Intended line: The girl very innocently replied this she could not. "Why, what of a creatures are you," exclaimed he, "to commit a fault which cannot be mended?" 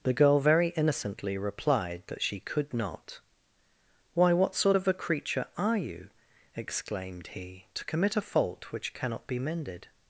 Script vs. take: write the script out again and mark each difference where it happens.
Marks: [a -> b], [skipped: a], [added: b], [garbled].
The girl very innocently replied [this -> that] she could not. "Why, what [added: sort] of a [creatures -> creature] are you," exclaimed he, "to commit a fault which cannot be mended?"